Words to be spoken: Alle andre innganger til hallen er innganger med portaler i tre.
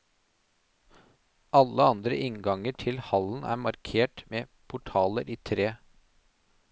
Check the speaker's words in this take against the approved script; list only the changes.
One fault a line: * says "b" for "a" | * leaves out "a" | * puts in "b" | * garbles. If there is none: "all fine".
* says "markert" for "innganger"